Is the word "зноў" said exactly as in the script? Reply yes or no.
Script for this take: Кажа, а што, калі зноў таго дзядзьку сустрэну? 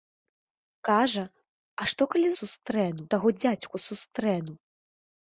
no